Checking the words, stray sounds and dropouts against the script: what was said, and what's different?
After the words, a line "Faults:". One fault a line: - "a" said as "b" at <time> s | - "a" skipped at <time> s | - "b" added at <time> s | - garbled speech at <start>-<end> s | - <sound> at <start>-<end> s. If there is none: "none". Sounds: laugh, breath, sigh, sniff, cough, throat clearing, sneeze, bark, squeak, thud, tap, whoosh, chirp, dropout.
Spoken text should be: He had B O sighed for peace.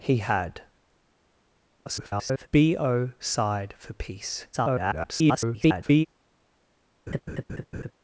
He had [garbled] B O sighed for peace. [garbled]
Faults:
- garbled speech at 1.9-2.5 s
- garbled speech at 4.5-6.1 s
- laugh at 7.1-7.9 s